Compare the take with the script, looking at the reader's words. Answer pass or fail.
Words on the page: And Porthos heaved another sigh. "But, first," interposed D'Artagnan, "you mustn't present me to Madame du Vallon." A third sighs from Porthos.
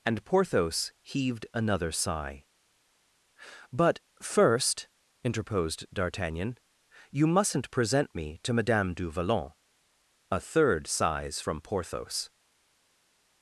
pass